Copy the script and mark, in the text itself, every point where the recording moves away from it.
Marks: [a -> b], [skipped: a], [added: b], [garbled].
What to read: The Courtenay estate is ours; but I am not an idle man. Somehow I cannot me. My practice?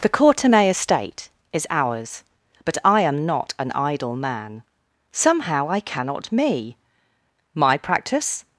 The Courtenay estate is ours; but I am not an idle man. Somehow I cannot me. My practice?